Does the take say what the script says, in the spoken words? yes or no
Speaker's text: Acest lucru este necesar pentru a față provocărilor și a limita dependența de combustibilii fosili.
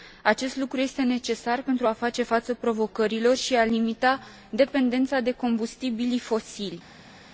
no